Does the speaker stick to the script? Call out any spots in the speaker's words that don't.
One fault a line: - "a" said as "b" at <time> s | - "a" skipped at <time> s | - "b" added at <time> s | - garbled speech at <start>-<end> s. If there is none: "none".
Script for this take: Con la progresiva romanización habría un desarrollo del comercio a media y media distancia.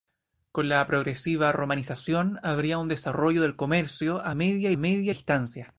none